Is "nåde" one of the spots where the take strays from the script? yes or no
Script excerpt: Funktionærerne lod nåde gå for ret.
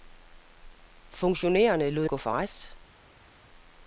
yes